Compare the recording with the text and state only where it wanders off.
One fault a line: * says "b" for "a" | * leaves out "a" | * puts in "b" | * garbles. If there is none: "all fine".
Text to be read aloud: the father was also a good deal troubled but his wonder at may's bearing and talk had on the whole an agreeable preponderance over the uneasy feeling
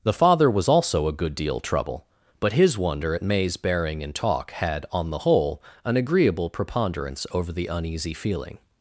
* says "trouble" for "troubled"